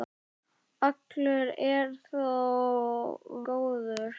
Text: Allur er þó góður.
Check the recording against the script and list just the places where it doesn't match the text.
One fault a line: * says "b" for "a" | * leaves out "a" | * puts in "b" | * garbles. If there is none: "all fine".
all fine